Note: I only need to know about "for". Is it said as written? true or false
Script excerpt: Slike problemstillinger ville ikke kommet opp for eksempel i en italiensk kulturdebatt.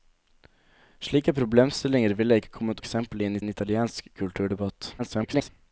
false